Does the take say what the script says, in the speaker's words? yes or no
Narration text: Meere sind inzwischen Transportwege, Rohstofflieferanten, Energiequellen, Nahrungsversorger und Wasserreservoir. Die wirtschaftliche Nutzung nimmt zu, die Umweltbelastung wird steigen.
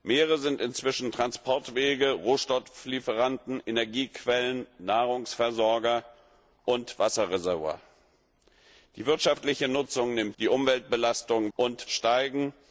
no